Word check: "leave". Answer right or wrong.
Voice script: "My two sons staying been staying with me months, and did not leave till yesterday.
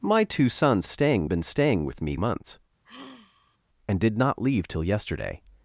right